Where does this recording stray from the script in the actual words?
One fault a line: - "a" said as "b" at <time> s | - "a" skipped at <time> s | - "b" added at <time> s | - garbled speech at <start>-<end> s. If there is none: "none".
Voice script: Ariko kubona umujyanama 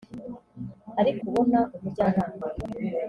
none